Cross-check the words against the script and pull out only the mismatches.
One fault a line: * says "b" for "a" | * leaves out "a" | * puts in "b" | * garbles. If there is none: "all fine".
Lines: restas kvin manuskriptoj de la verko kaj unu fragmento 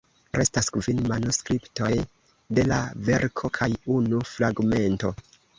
all fine